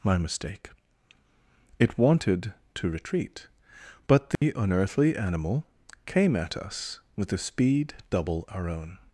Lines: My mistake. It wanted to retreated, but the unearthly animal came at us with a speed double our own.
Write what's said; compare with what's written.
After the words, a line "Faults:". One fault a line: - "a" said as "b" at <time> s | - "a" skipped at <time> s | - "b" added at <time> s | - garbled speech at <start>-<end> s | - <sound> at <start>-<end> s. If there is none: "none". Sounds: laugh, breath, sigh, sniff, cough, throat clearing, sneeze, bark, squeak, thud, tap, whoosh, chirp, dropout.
My mistake. It wanted to retreat, but the unearthly animal came at us with a speed double our own.
Faults:
- "retreated" said as "retreat" at 2.9 s
- dropout at 4.4-4.4 s